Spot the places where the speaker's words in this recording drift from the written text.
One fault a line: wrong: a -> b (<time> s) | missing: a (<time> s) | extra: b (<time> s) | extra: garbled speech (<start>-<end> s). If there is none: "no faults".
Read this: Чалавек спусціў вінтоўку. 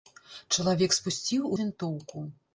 no faults